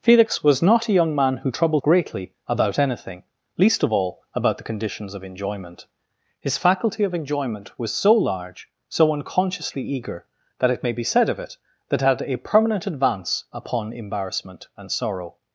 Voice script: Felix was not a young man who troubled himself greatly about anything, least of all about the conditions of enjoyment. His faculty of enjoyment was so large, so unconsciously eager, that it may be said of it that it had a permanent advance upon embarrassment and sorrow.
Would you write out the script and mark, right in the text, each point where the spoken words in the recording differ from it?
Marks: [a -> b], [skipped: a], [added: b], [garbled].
Felix was not a young man who troubled [skipped: himself] greatly about anything, least of all about the conditions of enjoyment. His faculty of enjoyment was so large, so unconsciously eager, that it may be said of it that it had a permanent advance upon embarrassment and sorrow.